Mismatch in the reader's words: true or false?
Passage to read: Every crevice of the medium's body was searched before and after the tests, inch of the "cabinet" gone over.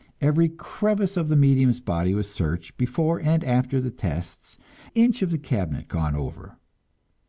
false